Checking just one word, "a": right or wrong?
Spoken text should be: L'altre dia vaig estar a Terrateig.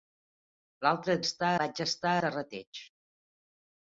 wrong